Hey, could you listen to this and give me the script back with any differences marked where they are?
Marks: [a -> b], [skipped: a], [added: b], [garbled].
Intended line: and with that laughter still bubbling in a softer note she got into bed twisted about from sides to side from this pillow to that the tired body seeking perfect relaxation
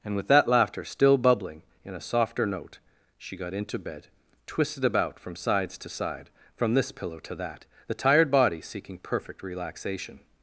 and with that laughter still bubbling in a softer note she got into bed twisted about from sides to side from this pillow to that the tired body seeking perfect relaxation